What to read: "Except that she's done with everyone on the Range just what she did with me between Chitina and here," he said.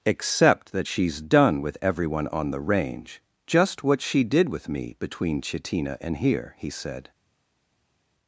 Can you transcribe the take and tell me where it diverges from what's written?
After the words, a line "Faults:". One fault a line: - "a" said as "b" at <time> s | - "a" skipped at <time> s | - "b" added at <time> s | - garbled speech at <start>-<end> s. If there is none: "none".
"Except that she's done with everyone on the Range just what she did with me between Chitina and here," he said.
Faults:
none